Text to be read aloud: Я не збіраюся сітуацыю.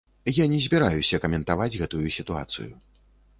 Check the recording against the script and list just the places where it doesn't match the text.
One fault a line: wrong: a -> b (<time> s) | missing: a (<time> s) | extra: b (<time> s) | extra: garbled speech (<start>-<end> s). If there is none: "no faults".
extra: каментаваць гэтую (1.2 s)